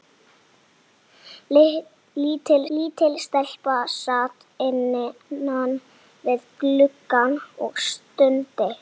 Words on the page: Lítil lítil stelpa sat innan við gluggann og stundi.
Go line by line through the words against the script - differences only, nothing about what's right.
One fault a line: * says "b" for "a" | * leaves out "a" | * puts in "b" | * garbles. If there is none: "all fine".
all fine